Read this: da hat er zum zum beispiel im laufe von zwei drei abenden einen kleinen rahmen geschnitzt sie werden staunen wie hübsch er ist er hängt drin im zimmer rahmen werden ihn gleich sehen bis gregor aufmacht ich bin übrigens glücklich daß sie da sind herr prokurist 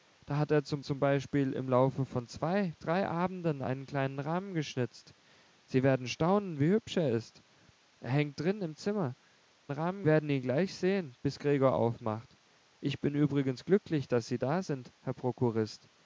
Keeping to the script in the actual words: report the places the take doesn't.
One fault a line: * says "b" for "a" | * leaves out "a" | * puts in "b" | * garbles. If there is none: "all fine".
all fine